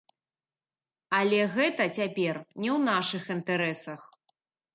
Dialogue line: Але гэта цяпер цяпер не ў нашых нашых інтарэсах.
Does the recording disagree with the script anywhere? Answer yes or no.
yes